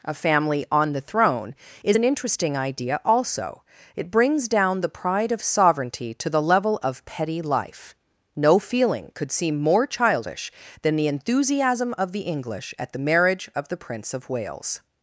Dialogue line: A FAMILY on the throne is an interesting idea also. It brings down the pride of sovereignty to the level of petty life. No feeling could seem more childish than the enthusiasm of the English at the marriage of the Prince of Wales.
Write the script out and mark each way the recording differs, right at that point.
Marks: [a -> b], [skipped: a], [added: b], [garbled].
A FAMILY on the throne is an interesting idea also. It brings down the pride of sovereignty to the level of petty life. No feeling could seem more childish than the enthusiasm of the English at the marriage of the Prince of Wales.